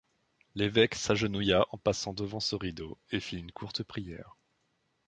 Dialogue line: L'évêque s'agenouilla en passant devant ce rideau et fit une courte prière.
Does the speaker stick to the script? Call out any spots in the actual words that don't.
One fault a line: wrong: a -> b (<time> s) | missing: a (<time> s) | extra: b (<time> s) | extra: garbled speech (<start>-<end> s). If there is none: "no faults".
no faults